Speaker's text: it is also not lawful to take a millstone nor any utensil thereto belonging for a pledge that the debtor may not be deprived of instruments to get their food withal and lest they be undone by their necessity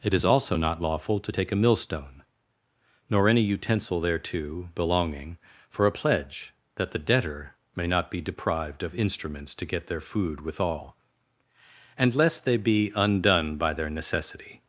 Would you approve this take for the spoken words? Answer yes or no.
yes